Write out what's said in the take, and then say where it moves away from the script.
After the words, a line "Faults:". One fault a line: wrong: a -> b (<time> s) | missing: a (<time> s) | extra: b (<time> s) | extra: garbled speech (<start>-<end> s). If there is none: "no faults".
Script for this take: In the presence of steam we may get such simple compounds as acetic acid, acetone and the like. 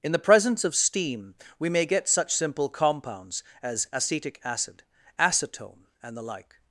In the presence of steam we may get such simple compounds as acetic acid, acetone and the like.
Faults:
no faults